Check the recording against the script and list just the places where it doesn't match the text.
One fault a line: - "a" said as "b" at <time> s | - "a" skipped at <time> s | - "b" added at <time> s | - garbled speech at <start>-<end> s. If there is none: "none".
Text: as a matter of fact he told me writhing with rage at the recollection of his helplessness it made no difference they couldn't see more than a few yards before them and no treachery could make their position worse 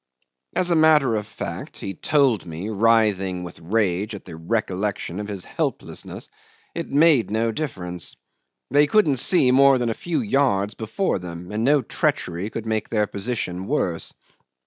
none